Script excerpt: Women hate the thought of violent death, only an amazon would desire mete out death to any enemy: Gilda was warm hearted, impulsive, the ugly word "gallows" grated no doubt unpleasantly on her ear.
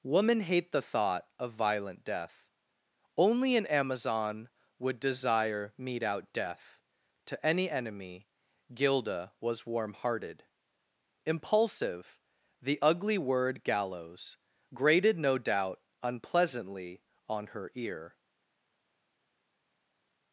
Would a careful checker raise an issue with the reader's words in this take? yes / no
no